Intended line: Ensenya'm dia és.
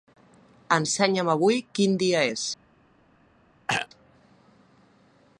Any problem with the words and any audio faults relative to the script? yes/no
yes